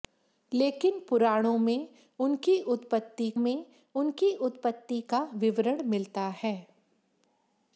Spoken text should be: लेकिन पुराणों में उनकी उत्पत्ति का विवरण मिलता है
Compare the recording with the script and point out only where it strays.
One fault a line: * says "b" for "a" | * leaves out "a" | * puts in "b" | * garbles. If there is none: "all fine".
* puts in "में उनकी उत्पत्ति"